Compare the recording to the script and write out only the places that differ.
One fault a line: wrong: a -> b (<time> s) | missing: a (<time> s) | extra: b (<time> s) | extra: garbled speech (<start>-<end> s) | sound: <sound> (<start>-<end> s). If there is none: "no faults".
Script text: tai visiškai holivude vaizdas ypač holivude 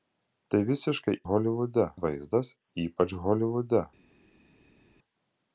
no faults